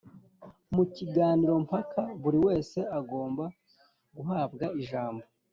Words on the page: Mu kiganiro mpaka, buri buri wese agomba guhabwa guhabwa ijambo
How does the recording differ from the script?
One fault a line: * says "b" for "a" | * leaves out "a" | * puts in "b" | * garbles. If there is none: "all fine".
* leaves out "buri"
* leaves out "guhabwa"